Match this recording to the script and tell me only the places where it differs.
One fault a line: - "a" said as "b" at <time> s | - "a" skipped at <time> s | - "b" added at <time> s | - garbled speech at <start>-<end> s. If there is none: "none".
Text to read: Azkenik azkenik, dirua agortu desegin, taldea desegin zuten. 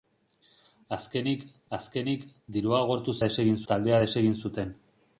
none